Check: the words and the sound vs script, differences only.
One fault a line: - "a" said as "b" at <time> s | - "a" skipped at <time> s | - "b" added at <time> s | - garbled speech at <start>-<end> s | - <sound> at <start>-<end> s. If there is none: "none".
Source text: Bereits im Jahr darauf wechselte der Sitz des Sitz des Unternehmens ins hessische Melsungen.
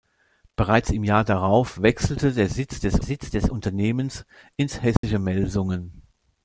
- dropout at 5.0-5.0 s